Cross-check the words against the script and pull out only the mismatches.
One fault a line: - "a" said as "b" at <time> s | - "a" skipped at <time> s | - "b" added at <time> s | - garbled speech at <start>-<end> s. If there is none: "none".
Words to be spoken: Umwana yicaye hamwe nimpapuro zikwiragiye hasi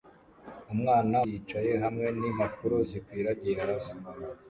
none